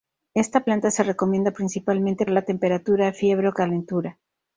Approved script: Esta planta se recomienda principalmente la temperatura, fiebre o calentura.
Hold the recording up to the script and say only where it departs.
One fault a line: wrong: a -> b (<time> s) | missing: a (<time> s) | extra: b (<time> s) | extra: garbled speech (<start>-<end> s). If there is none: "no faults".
no faults